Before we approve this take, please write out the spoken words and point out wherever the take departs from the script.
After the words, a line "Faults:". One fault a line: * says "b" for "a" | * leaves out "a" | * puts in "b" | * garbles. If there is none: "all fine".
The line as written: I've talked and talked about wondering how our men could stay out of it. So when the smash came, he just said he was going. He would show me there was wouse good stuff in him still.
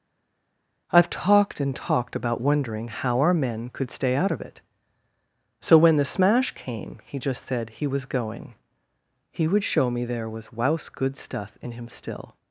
I've talked and talked about wondering how our men could stay out of it. So when the smash came, he just said he was going. He would show me there was wouse good stuff in him still.
Faults:
all fine